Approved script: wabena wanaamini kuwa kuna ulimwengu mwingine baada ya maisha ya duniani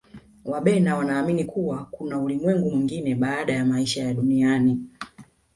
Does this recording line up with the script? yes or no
yes